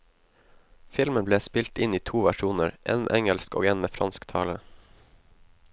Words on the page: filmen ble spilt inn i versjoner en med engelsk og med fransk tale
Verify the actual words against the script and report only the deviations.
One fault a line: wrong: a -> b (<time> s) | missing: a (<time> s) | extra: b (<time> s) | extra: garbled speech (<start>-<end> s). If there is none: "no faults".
extra: to (2.1 s)
extra: en (3.7 s)